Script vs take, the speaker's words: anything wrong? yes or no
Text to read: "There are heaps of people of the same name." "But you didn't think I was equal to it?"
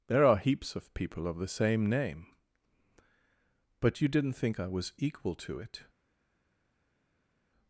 no